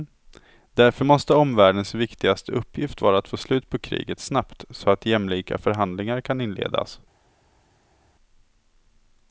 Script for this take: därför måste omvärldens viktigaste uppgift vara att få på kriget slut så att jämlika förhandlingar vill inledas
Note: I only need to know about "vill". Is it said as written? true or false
false